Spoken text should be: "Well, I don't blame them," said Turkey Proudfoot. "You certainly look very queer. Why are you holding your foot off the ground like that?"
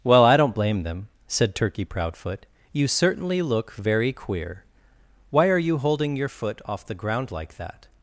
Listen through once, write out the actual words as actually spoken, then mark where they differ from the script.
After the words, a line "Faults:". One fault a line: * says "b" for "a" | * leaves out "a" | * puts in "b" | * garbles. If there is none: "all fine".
"Well, I don't blame them," said Turkey Proudfoot. "You certainly look very queer. Why are you holding your foot off the ground like that?"
Faults:
all fine